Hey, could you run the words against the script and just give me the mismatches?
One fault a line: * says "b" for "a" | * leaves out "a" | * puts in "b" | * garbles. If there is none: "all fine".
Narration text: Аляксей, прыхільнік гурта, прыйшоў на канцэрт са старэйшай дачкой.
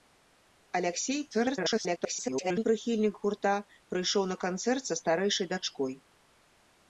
* garbles